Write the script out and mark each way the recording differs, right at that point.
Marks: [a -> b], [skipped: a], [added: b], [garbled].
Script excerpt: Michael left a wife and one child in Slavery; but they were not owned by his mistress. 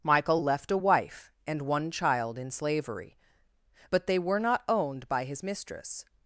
Michael left a wife and one child in Slavery; but they were not owned by his mistress.